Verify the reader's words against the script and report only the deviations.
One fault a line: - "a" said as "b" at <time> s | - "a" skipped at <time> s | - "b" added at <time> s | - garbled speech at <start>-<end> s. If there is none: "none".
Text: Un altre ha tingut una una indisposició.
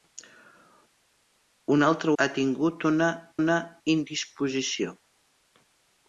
none